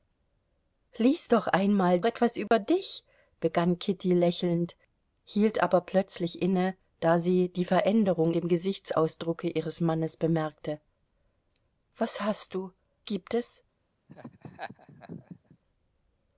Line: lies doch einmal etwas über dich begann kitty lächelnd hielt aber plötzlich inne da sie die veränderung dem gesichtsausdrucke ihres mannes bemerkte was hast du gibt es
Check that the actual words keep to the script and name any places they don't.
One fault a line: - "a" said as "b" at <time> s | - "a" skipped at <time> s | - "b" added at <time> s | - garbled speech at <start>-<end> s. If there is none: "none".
none